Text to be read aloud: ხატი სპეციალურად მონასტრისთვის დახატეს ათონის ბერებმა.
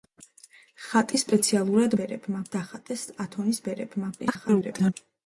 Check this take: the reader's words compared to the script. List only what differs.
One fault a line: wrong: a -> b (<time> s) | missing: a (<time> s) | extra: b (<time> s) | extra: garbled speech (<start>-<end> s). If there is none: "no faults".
wrong: მონასტრისთვის -> ბერებმა (2.0 s)
extra: garbled speech (4.2-4.9 s)